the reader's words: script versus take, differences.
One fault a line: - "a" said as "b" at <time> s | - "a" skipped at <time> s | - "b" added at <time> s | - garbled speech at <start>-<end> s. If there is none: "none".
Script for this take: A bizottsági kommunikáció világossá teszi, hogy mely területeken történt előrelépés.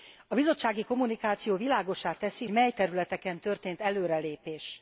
- "hogy" skipped at 2.5 s